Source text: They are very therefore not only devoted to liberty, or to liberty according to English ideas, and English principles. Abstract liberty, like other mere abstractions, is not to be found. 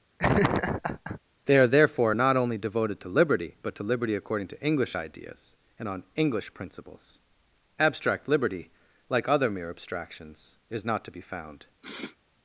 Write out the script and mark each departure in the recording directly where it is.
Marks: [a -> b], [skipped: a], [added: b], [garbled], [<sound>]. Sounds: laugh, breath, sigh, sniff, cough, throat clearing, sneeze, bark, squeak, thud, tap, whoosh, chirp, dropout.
[laugh] They are [skipped: very] therefore not only devoted to liberty, [or -> but] to liberty according to English ideas, and [added: on] English principles. Abstract liberty, like other mere abstractions, is not to be found. [sniff]